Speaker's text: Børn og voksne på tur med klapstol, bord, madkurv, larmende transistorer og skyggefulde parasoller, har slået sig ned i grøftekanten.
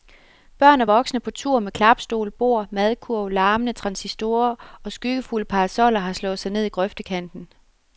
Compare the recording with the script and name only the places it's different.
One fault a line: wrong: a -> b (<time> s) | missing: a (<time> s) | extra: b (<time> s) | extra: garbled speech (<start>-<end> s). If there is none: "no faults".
no faults